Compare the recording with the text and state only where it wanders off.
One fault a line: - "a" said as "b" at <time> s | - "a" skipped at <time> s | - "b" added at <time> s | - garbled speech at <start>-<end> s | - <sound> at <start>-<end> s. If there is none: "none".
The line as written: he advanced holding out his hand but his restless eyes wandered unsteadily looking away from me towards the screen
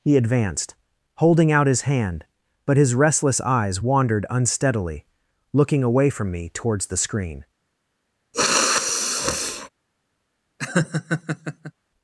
- sniff at 8.3-9.7 s
- laugh at 10.6-11.7 s